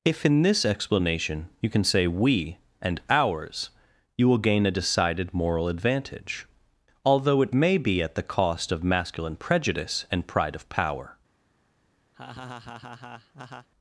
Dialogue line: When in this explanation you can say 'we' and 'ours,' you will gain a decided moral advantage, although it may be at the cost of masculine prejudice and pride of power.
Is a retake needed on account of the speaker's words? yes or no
yes